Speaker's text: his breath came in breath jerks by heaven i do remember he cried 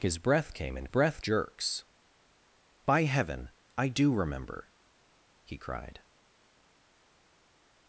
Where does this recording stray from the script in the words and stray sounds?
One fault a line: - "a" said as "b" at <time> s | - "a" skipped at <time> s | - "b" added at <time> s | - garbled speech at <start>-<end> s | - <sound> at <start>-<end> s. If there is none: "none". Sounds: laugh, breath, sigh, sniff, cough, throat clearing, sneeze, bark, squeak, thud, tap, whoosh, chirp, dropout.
none